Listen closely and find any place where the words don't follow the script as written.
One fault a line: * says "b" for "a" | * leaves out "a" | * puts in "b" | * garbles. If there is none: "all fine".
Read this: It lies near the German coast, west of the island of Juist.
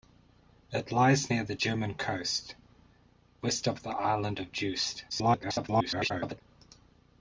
* garbles